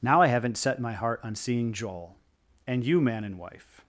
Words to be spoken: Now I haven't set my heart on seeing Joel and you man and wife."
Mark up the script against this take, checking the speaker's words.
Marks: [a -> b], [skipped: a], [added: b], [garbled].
Now I haven't set my heart on seeing Joel and you man and wife."